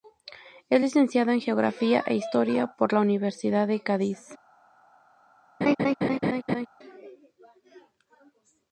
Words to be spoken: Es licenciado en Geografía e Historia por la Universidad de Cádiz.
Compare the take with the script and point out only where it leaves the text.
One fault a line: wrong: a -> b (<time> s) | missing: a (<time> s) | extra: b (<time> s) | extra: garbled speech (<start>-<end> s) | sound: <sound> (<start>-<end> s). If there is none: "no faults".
sound: laugh (5.6-6.7 s)